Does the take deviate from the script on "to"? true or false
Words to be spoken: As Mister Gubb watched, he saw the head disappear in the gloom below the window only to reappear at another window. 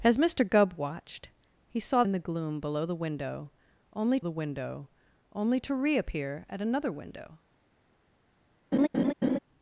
false